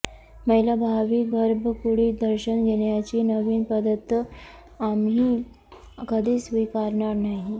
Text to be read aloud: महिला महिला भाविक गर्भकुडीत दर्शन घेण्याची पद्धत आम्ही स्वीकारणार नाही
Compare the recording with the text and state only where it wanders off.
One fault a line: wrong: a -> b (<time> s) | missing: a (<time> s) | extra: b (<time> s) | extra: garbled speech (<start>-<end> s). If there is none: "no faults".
missing: महिला (0.8 s)
extra: नवीन (3.2 s)
extra: कधीच (6.1 s)